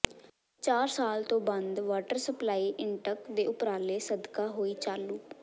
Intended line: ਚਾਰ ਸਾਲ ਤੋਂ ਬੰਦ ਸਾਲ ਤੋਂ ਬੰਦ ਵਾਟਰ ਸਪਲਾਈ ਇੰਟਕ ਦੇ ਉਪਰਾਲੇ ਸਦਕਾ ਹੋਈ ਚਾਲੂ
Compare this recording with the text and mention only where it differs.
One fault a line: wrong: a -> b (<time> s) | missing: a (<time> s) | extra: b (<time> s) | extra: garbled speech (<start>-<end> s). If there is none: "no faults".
missing: ਸਾਲ ਤੋਂ ਬੰਦ (1.8 s)